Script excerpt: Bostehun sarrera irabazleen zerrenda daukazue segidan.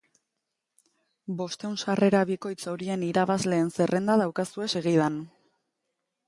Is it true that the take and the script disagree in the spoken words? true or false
true